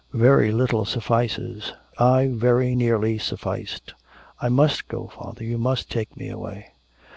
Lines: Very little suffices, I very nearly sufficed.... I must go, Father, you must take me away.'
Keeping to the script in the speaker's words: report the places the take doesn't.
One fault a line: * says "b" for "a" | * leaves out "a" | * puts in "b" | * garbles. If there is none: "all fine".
all fine